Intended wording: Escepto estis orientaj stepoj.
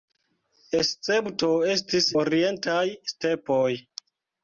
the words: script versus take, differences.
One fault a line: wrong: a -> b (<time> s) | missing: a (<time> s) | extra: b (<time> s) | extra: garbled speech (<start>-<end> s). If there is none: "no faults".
no faults